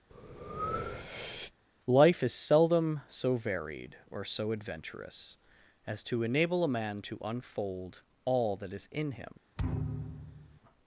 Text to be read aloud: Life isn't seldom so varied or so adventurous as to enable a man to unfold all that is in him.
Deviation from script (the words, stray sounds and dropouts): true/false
true